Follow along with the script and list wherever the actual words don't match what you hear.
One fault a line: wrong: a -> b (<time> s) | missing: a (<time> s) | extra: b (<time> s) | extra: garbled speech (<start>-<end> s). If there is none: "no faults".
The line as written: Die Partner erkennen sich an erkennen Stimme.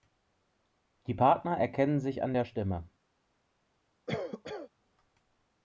wrong: erkennen -> der (2.3 s)